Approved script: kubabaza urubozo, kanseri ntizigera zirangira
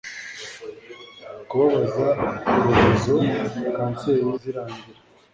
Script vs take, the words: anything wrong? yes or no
yes